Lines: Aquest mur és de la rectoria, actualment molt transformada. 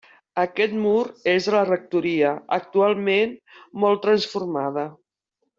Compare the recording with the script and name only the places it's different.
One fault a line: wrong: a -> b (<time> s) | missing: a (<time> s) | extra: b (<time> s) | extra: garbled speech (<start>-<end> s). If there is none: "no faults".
no faults